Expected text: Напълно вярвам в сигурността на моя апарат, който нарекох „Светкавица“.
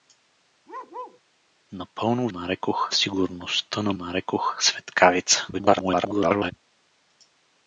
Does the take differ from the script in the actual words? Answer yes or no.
yes